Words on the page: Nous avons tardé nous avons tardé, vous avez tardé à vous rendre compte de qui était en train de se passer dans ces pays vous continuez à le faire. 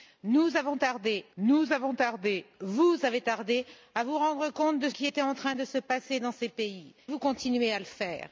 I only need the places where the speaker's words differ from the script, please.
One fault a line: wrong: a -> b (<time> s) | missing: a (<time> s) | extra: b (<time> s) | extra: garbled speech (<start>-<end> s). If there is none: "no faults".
no faults